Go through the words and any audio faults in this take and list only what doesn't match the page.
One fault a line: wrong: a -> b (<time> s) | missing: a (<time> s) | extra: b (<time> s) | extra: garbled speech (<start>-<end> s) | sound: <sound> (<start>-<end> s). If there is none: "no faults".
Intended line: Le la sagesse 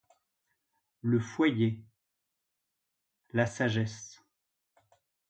extra: foyer (1.2 s)